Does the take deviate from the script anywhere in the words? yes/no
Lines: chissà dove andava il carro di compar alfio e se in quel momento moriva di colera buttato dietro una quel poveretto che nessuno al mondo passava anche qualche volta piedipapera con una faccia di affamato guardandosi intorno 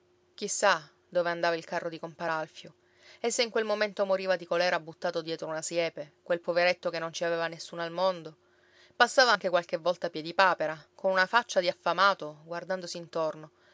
yes